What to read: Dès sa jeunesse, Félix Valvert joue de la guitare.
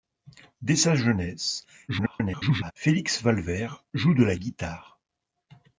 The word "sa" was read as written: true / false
true